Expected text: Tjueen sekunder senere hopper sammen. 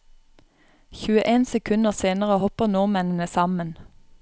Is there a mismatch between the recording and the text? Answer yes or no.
yes